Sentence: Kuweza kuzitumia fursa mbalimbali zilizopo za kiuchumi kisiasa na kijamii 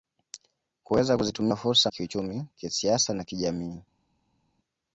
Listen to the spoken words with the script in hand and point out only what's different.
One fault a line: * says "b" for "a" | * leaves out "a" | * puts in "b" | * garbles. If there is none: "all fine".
* leaves out "mbalimbali zilizopo za"